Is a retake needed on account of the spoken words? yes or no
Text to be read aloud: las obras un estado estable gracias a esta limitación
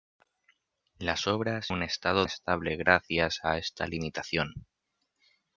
no